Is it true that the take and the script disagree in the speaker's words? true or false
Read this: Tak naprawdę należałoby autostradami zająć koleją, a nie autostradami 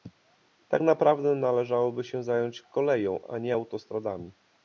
true